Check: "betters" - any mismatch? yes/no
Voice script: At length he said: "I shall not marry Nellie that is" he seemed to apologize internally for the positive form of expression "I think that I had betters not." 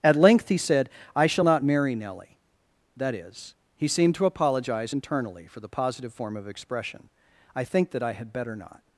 yes